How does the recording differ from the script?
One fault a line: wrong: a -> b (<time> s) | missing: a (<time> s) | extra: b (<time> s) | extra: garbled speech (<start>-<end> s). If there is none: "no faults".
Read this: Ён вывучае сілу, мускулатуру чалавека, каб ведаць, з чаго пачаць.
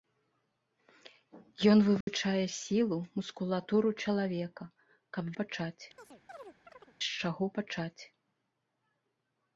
wrong: ведаць -> пачаць (5.4 s)